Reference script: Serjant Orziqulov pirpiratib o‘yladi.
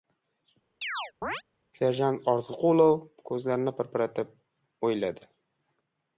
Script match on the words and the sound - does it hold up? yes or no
no